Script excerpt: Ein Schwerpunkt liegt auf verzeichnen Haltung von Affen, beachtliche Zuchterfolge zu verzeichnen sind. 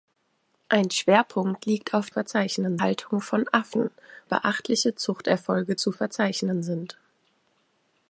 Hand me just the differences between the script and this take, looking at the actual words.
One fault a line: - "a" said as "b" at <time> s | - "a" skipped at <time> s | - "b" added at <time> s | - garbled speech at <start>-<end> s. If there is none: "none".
none